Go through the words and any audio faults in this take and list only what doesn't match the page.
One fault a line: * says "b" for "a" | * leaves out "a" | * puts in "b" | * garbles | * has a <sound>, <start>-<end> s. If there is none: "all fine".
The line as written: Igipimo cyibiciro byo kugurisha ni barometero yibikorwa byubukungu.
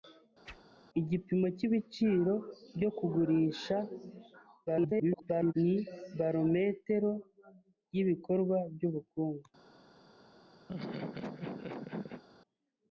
* has a whoosh, 0.4-0.6 s
* garbles
* has a laugh, 10.7-12.2 s